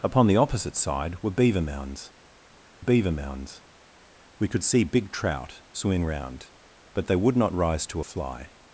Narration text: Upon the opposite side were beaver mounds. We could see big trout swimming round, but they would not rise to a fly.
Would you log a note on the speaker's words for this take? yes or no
yes